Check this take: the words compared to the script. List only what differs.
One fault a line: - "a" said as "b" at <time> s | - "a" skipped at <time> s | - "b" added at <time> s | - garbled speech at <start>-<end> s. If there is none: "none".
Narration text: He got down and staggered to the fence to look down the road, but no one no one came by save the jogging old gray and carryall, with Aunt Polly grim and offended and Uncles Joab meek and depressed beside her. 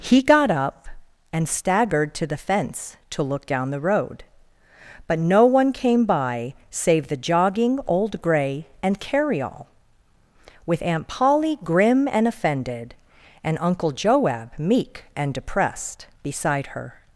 - "down" said as "up" at 0.5 s
- "no one" skipped at 5.7 s
- "Uncles" said as "Uncle" at 13.6 s